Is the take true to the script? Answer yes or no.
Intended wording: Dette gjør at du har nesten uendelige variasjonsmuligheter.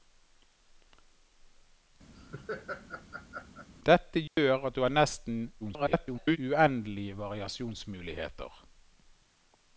no